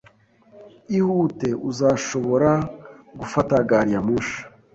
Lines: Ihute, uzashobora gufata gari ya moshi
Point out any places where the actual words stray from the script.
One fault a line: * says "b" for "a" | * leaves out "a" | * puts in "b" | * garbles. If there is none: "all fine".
all fine